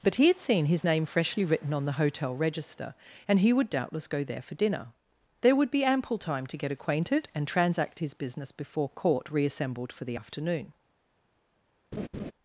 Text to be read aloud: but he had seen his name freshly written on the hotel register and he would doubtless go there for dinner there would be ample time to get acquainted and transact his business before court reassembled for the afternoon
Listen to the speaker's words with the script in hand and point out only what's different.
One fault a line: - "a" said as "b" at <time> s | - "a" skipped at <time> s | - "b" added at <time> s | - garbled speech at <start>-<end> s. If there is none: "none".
none